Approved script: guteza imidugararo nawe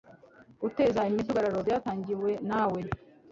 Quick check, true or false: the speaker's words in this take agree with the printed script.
false